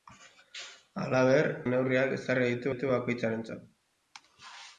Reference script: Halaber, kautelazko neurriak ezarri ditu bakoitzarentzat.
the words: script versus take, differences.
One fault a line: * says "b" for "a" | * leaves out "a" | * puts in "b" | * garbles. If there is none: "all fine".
* leaves out "kautelazko"
* puts in "ditu"